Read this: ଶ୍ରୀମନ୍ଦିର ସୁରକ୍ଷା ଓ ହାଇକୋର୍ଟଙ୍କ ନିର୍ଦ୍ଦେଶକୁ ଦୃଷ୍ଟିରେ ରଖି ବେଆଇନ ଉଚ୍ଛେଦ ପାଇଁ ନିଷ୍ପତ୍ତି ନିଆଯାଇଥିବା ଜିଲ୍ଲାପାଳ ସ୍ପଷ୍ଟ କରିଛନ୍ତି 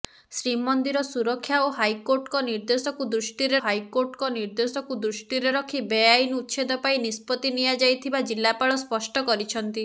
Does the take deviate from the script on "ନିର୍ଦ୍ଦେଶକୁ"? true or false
false